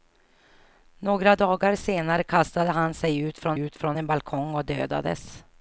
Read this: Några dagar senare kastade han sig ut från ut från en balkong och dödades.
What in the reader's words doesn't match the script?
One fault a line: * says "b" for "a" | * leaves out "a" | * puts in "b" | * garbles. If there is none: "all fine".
all fine